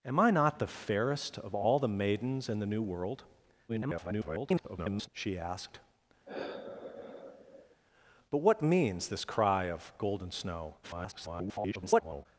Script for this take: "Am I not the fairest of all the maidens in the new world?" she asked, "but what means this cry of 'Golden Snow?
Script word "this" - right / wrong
right